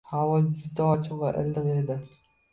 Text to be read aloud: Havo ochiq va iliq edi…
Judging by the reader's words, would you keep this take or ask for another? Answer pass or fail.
fail